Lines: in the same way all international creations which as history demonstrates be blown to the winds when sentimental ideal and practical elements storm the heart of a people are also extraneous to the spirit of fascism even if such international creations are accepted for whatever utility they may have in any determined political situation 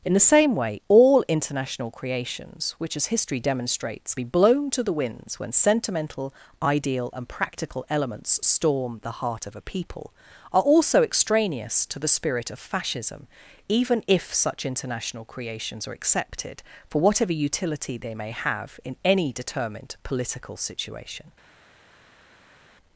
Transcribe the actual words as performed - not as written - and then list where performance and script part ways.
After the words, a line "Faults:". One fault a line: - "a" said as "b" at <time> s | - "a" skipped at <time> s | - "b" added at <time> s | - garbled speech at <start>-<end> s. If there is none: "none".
in the same way all international creations which as history demonstrates be blown to the winds when sentimental ideal and practical elements storm the heart of a people are also extraneous to the spirit of fascism even if such international creations are accepted for whatever utility they may have in any determined political situation
Faults:
none